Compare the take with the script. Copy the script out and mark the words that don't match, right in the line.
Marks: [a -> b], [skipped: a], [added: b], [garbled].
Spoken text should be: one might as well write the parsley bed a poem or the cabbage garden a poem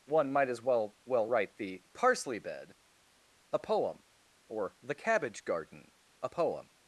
one might as well [added: well] write the parsley bed a poem or the cabbage garden a poem